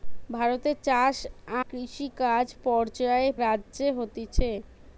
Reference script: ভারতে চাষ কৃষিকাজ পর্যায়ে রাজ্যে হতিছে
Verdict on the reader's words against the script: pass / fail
pass